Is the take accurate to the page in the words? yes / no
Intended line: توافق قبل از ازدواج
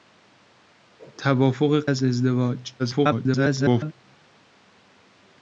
no